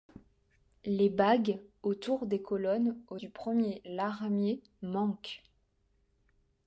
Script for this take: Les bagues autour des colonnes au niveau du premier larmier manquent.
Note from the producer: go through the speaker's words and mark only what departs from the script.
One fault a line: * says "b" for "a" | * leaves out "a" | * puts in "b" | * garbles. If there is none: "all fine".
* leaves out "niveau"